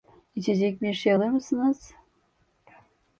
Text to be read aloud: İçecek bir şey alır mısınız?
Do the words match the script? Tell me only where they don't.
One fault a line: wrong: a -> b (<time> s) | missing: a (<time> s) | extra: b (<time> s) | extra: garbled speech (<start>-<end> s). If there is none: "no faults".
no faults